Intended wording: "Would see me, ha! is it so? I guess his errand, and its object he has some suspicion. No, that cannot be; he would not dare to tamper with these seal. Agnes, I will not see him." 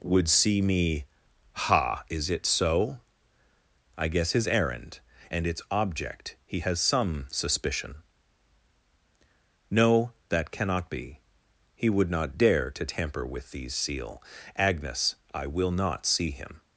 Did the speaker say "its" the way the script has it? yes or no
yes